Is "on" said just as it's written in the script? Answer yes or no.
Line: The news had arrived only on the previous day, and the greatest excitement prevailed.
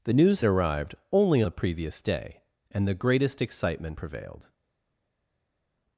no